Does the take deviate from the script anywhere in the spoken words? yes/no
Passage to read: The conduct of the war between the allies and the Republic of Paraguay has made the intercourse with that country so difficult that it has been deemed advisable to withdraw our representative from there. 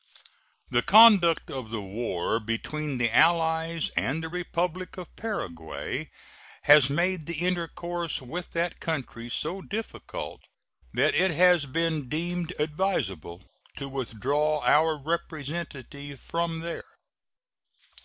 no